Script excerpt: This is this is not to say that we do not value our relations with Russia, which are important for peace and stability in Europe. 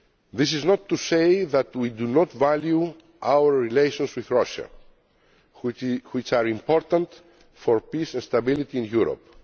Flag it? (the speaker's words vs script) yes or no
yes